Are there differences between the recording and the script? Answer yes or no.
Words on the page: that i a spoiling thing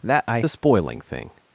no